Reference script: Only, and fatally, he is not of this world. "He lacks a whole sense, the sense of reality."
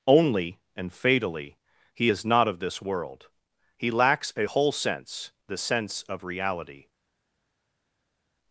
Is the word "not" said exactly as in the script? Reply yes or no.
yes